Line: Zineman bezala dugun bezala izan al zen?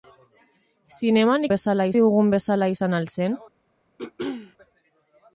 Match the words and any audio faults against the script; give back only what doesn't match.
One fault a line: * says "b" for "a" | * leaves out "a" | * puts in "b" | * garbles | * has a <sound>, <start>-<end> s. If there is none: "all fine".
* has a throat clearing, 4.0-4.6 s